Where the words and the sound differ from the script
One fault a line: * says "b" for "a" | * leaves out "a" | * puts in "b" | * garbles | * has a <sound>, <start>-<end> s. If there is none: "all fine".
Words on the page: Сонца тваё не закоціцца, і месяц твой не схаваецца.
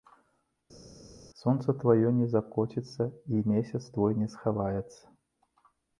all fine